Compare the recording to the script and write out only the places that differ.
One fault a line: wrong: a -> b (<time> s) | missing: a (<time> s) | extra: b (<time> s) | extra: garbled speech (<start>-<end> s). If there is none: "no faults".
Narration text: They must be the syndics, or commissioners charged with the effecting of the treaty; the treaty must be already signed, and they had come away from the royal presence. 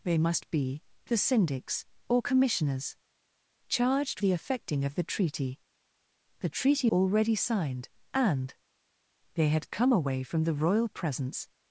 missing: with (4.2 s)
missing: must be (6.9 s)